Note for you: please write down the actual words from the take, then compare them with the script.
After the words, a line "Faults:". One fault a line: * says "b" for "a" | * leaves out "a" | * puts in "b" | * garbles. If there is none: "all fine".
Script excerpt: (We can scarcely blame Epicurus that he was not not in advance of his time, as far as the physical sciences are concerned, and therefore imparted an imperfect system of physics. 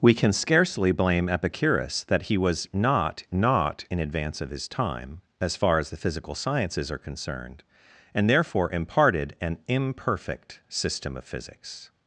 (We can scarcely blame Epicurus that he was not not in advance of his time, as far as the physical sciences are concerned, and therefore imparted an imperfect system of physics.
Faults:
all fine